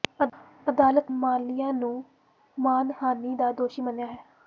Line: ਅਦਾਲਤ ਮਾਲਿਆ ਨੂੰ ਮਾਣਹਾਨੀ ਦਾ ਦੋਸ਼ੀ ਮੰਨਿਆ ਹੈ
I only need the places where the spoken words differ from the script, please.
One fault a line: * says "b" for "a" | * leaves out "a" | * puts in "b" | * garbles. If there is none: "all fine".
all fine